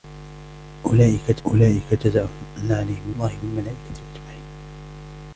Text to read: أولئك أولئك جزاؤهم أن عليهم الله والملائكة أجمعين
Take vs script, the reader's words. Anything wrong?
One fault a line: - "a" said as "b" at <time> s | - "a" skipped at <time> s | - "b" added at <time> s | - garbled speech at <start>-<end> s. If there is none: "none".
none